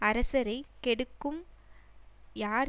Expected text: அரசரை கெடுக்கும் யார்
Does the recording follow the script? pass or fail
pass